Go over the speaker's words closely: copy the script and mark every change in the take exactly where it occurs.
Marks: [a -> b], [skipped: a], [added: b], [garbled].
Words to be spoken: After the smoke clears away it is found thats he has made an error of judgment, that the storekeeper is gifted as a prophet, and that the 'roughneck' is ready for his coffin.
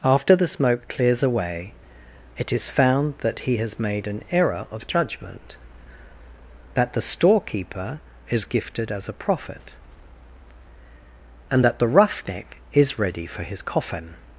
After the smoke clears away it is found [thats -> that] he has made an error of judgment, that the storekeeper is gifted as a prophet, and that the 'roughneck' is ready for his coffin.